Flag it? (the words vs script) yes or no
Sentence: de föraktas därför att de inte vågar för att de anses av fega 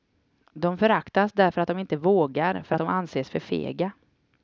yes